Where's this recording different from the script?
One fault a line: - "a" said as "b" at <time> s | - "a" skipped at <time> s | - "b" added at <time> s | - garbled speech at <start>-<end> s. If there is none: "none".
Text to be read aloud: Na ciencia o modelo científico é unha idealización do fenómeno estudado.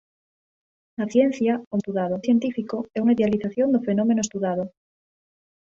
- "modelo" said as "estudado" at 1.8 s